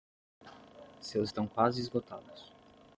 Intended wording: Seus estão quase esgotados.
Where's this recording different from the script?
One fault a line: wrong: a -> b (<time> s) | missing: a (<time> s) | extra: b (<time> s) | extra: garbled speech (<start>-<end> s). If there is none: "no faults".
no faults